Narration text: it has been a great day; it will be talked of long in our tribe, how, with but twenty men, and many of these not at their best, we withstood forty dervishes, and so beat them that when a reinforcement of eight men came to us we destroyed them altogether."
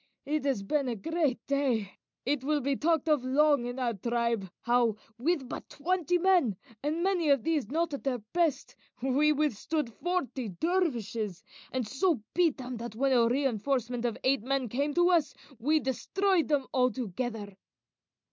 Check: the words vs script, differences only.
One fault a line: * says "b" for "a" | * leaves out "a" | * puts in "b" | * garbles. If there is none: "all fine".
all fine